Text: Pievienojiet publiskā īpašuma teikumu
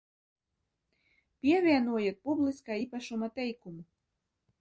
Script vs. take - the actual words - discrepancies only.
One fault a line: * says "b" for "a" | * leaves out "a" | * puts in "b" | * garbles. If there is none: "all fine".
all fine